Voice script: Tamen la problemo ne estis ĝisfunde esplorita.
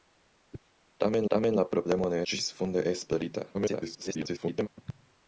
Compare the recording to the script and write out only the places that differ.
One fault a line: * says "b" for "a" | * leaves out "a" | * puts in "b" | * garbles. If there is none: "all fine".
* puts in "tamen"
* leaves out "estis"
* garbles